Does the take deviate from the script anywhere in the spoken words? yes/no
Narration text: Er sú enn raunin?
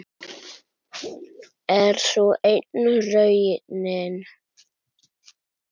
no